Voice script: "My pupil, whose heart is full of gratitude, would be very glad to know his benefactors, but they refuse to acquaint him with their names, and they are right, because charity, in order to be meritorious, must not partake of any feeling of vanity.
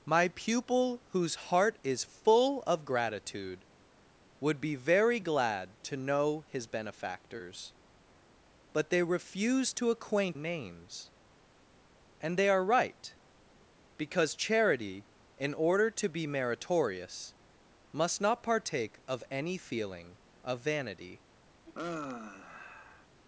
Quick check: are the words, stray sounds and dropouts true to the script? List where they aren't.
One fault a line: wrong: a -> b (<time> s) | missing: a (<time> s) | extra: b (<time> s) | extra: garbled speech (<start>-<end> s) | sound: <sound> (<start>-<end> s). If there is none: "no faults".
missing: him with their (10.4 s)
sound: sigh (21.7-23.1 s)